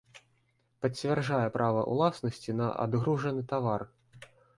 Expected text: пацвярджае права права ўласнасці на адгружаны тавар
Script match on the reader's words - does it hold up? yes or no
no